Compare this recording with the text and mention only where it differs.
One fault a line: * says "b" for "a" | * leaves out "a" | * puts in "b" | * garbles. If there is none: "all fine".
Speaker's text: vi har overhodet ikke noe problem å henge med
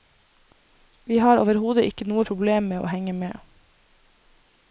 * puts in "med"